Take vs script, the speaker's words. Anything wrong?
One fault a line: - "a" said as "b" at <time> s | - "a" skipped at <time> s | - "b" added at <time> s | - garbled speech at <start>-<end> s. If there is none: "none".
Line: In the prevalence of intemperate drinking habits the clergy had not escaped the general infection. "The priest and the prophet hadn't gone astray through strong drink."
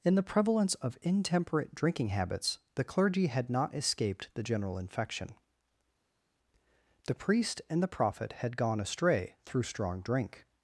- "hadn't" said as "had" at 8.3 s